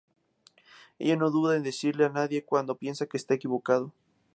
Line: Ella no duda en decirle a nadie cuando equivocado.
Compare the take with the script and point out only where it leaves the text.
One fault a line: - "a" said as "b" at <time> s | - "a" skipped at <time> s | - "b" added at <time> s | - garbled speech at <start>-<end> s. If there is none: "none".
- "piensa que está" added at 2.7 s